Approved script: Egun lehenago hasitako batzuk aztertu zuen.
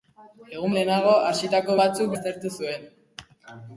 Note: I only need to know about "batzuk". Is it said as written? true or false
true